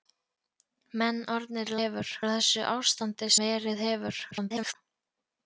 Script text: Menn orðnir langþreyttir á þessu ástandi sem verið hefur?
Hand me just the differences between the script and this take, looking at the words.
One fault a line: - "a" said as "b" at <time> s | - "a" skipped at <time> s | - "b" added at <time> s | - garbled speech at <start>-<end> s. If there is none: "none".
- "langþreyttir" said as "hefur" at 1.8 s
- "sem" skipped at 3.3 s
- garbled speech at 4.3-4.8 s